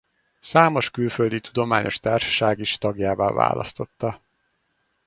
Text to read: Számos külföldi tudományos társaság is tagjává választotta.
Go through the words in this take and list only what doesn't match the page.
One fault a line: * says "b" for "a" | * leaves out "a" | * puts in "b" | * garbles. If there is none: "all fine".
all fine